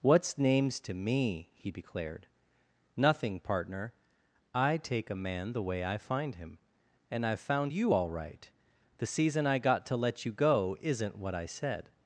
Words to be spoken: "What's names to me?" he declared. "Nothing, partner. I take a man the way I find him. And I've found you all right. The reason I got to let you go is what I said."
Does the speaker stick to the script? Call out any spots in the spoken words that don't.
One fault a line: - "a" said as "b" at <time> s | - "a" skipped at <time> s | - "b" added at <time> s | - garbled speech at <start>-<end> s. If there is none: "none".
- "reason" said as "season" at 9.1 s
- "is" said as "isn't" at 10.8 s